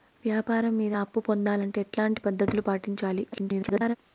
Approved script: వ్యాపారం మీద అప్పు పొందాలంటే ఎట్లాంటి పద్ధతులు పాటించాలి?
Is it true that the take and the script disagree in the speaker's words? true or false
true